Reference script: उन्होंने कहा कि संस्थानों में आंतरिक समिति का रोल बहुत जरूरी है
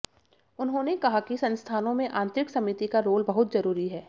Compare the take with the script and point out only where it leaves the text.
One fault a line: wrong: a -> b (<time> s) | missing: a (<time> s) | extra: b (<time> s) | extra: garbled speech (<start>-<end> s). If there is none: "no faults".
no faults